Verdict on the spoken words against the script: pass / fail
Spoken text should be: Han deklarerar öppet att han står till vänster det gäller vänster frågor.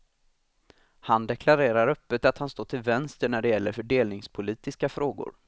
fail